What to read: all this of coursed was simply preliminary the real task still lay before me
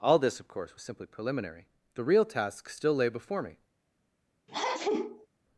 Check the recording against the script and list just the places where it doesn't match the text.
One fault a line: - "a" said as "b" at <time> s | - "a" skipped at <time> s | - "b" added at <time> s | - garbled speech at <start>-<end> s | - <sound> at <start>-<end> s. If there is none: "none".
- "coursed" said as "course" at 0.5 s
- sneeze at 4.5-5.3 s